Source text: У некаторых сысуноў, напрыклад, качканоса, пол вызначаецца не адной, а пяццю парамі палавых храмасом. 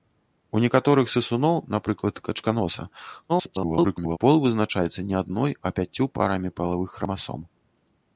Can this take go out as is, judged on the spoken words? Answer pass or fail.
fail